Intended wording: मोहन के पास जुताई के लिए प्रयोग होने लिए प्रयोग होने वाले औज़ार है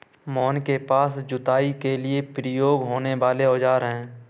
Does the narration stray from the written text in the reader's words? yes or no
yes